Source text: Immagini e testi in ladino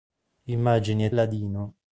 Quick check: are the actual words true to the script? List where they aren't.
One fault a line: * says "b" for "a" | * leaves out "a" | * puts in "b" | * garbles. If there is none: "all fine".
* leaves out "testi in"